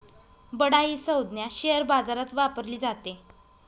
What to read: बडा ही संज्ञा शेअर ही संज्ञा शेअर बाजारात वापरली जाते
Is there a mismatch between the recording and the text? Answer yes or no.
yes